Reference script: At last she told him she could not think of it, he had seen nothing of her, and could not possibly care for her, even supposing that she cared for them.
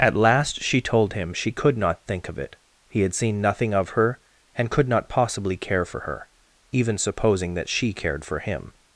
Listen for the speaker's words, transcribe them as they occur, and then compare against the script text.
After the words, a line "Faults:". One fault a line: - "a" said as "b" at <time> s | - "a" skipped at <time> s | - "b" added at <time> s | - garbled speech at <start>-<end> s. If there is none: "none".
At last she told him she could not think of it, he had seen nothing of her, and could not possibly care for her, even supposing that she cared for him.
Faults:
- "them" said as "him" at 8.4 s